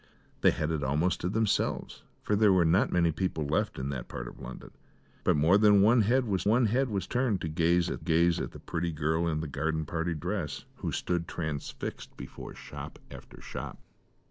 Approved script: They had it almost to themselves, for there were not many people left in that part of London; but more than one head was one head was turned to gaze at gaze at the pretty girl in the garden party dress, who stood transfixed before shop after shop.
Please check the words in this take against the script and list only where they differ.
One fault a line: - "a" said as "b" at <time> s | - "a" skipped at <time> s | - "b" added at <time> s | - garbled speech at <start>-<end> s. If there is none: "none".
none